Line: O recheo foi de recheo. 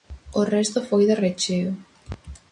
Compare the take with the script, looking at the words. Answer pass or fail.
fail